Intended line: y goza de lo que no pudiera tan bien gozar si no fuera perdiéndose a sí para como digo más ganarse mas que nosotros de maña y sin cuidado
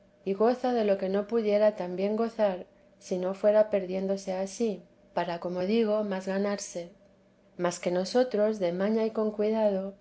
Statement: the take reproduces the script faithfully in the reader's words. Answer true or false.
false